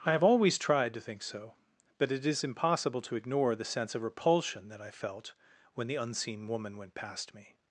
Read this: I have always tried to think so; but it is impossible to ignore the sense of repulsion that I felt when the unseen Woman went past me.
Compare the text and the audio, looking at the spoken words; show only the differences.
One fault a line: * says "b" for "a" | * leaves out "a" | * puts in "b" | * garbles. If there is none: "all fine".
all fine